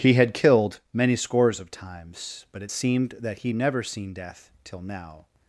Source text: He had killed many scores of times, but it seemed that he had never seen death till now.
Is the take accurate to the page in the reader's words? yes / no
no